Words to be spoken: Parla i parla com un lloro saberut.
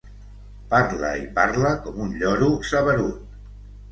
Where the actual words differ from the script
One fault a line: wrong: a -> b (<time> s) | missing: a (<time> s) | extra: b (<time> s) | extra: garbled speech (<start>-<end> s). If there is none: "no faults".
no faults